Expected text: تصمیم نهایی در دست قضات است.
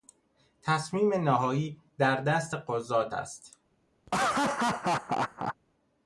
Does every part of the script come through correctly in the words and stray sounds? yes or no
no